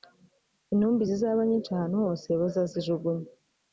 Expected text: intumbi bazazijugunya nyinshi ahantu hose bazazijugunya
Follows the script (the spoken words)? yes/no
no